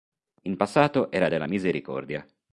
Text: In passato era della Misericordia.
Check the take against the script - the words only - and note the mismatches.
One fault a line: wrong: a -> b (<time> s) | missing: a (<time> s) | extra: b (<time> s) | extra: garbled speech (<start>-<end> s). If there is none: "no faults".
no faults